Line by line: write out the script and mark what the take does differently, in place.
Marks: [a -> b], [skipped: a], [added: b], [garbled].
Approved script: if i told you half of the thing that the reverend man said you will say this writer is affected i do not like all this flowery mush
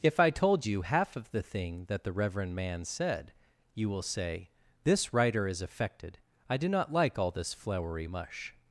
if i told you half of the thing that the reverend man said you will say this writer is affected i do not like all this flowery mush